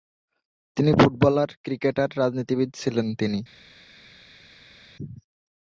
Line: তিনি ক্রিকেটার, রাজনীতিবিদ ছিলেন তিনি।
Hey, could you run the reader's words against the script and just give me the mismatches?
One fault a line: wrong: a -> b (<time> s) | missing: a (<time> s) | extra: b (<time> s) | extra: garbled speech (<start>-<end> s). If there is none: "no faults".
extra: ফুটবলার (0.9 s)